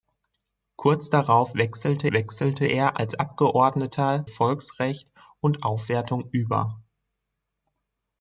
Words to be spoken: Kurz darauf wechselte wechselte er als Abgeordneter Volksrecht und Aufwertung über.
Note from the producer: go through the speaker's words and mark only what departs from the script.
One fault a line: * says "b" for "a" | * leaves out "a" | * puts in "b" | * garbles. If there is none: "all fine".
all fine